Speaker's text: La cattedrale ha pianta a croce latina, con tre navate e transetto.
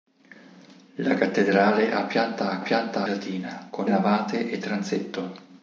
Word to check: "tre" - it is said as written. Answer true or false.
false